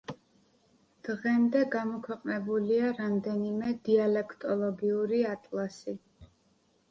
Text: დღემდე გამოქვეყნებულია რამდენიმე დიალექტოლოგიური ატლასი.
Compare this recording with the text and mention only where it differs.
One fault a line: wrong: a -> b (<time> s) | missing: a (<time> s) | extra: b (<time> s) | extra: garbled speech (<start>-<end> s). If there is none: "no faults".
no faults